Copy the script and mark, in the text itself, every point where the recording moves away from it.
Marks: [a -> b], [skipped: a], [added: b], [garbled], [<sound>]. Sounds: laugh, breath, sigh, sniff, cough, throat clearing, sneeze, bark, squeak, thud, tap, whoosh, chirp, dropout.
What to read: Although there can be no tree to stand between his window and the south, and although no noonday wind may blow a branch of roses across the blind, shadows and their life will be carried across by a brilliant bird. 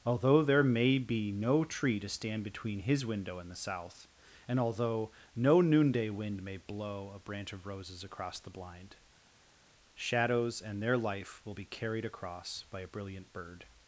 Although there [can -> may] be no tree to stand between his window and the south, and although no noonday wind may blow a branch of roses across the blind, shadows and their life will be carried across by a brilliant bird.